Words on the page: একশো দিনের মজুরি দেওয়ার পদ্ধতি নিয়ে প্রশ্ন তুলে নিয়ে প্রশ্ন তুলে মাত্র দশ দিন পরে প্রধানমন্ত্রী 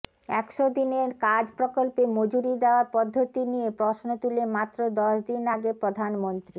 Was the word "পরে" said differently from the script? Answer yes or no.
yes